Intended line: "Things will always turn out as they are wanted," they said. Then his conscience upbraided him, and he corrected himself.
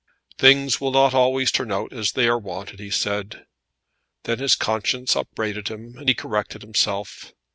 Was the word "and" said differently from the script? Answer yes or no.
no